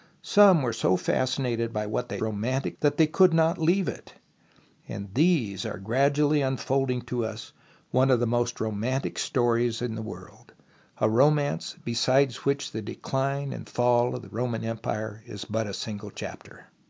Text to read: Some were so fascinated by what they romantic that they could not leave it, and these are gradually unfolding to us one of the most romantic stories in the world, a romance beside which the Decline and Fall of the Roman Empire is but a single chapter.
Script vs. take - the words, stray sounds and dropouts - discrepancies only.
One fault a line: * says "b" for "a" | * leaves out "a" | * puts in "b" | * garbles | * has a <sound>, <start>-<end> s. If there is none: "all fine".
all fine